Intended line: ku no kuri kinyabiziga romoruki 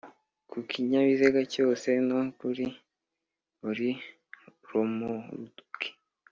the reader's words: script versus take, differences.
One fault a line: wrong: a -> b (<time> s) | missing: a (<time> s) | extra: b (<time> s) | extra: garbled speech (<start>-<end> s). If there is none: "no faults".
extra: kinyabiziga cyose (0.7 s)
wrong: kinyabiziga -> buri (3.6 s)